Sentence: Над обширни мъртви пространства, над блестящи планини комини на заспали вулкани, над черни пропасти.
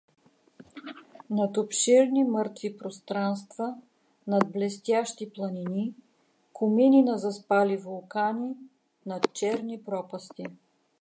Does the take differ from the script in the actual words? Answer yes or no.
no